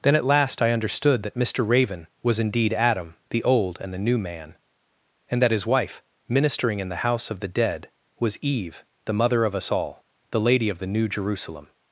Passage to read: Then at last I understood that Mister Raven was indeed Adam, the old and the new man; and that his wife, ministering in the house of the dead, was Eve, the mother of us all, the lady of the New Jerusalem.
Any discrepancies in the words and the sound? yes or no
no